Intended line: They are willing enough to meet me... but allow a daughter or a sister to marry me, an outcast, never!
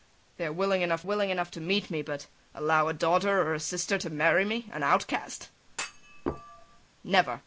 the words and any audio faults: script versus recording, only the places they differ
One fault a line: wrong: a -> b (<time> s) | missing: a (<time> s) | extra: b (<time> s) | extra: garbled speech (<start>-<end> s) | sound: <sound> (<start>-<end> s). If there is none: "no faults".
extra: willing enough (1.0 s)
sound: thud (5.7-6.9 s)